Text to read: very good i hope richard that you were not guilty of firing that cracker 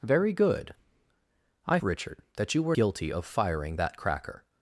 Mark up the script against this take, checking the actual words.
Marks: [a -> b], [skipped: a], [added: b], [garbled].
very good i [skipped: hope] richard that you were [skipped: not] guilty of firing that cracker